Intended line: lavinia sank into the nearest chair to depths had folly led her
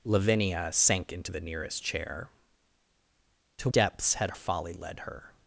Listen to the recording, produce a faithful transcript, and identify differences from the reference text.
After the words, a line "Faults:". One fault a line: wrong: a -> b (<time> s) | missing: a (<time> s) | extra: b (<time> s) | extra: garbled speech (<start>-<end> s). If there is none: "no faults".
lavinia sank into the nearest chair to depths had folly led her
Faults:
no faults